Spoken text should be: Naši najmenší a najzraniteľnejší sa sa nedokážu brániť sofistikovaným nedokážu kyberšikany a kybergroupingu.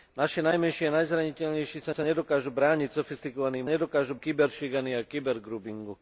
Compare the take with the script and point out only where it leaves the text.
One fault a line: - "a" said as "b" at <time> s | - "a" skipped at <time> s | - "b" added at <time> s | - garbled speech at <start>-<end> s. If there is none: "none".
none